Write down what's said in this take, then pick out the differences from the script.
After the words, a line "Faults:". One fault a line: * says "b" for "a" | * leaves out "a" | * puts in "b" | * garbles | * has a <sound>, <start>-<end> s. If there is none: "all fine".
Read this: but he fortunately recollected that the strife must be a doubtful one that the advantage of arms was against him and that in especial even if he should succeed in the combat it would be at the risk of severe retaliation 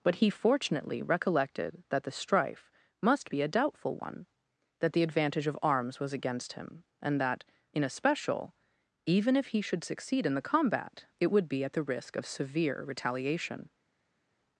but he fortunately recollected that the strife must be a doubtful one that the advantage of arms was against him and that in especial even if he should succeed in the combat it would be at the risk of severe retaliation
Faults:
all fine